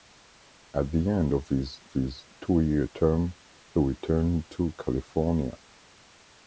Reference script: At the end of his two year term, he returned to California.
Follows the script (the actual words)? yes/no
no